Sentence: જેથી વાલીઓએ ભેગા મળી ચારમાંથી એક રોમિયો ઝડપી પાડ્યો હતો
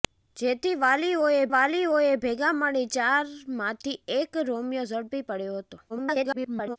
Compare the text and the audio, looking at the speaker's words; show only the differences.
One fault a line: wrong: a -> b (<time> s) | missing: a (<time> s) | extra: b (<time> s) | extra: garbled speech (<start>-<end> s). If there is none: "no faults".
extra: વાલીઓએ (1.5 s)
extra: garbled speech (5.9-6.8 s)